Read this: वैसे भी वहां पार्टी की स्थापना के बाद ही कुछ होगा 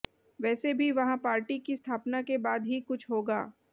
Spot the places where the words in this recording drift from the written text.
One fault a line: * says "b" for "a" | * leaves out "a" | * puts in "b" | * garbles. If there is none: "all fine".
all fine